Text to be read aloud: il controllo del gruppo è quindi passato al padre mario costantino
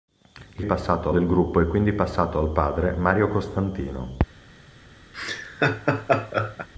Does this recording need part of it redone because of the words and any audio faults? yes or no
yes